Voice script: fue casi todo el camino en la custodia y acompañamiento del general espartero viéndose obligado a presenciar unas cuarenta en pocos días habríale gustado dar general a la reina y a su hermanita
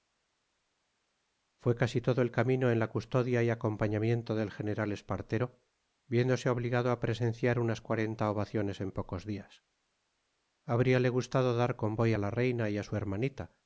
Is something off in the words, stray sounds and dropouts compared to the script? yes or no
yes